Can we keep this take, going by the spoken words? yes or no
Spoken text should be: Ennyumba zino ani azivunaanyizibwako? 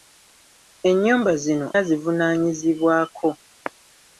no